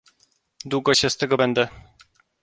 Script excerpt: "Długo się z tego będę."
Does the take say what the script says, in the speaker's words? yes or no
yes